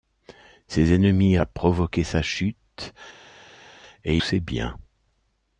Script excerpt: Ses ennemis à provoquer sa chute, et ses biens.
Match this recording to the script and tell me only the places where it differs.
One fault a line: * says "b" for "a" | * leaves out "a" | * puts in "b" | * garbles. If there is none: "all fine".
all fine